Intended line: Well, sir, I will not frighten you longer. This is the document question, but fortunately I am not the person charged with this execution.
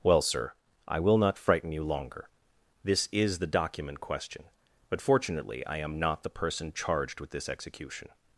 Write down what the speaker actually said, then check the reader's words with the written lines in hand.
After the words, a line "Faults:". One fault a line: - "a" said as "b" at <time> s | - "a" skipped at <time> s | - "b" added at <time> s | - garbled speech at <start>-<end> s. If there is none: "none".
Well, sir, I will not frighten you longer. This is the document question, but fortunately I am not the person charged with this execution.
Faults:
none